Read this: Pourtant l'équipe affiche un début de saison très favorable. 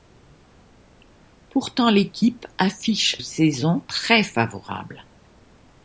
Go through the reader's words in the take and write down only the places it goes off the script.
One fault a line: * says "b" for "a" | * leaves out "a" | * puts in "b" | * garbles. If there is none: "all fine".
* leaves out "un début de"